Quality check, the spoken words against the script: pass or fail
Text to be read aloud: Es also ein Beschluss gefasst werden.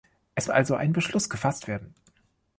pass